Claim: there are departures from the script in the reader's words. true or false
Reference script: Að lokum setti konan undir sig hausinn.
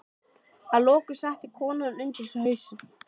false